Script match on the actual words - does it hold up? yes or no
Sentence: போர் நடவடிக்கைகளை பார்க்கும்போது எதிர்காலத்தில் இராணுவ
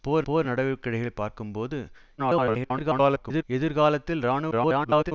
no